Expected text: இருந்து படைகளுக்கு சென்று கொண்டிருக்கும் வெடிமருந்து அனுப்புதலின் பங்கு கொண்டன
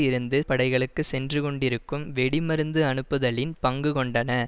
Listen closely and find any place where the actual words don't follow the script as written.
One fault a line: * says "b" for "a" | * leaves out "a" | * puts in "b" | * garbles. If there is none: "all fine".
all fine